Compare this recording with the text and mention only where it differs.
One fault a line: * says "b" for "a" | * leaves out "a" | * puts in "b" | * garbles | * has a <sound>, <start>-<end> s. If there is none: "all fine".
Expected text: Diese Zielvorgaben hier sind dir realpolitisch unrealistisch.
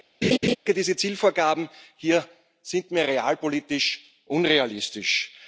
* has a laugh, 0.2-0.6 s
* says "mir" for "dir"